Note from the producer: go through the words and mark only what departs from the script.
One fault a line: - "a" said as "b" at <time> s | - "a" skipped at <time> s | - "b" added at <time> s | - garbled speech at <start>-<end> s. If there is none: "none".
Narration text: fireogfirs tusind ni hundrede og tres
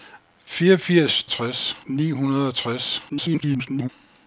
- "tusind" said as "tres" at 1.3 s
- garbled speech at 3.1-3.9 s